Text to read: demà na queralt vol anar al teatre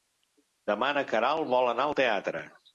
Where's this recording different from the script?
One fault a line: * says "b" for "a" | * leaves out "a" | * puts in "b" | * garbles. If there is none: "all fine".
all fine